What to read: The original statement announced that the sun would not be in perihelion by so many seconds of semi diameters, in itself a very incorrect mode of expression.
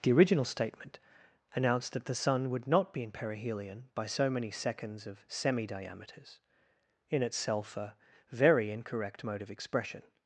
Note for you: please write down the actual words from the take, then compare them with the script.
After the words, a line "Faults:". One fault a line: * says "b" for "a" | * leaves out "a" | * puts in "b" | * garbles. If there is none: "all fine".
The original statement announced that the sun would not be in perihelion by so many seconds of semi diameters, in itself a very incorrect mode of expression.
Faults:
all fine